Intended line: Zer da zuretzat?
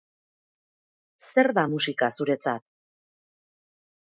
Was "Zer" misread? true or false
false